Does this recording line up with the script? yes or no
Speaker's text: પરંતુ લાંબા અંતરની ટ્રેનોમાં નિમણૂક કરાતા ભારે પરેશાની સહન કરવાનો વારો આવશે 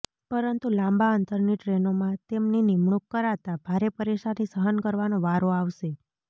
no